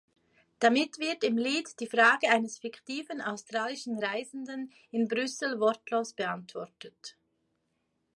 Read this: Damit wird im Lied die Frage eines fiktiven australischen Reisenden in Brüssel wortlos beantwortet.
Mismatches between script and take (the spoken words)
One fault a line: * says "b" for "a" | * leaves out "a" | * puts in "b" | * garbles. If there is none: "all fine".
all fine